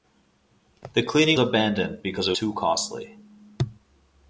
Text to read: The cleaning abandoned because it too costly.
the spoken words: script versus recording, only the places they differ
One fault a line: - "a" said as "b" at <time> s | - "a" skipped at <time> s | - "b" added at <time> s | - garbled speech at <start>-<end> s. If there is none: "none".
none